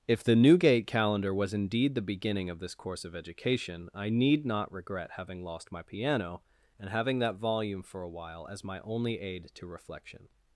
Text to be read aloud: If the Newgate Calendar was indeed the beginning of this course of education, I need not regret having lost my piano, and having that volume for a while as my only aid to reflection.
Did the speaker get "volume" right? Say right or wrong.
right